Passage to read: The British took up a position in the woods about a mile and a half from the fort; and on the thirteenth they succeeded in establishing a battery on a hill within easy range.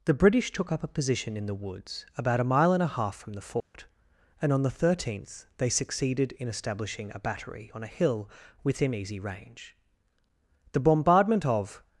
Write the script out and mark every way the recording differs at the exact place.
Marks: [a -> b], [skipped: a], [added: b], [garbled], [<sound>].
The British took up a position in the woods about a mile and a half from the fort; [dropout] and on the thirteenth they succeeded in establishing a battery on a hill within easy range. [added: The bombardment of]